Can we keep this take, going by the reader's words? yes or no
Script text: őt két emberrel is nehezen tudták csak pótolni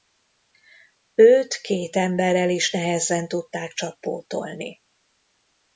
yes